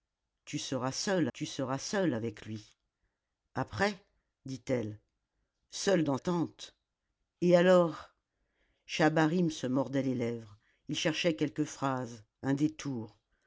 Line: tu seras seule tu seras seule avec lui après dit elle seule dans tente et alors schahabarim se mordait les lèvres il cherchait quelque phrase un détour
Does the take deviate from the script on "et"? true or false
false